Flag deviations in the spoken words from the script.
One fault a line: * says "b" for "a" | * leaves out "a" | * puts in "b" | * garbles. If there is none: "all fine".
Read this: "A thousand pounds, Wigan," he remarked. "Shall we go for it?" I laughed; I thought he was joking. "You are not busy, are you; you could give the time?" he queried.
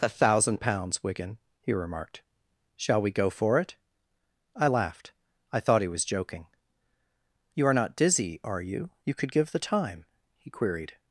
* says "dizzy" for "busy"